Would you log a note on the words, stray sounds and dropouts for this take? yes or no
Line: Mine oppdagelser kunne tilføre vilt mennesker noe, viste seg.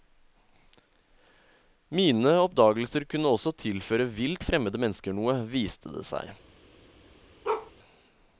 yes